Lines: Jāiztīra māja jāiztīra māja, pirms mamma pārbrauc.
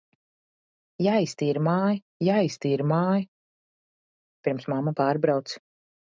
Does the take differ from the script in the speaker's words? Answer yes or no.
no